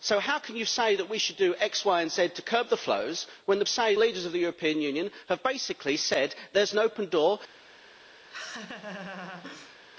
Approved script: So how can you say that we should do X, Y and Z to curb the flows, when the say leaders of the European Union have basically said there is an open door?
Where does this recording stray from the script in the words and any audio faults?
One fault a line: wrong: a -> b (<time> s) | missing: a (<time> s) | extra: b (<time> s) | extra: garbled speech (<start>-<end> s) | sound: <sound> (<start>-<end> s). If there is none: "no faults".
sound: laugh (8.3-9.8 s)